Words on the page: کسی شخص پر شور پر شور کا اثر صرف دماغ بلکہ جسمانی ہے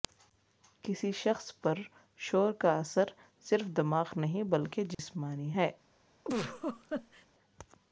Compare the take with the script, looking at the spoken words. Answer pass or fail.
fail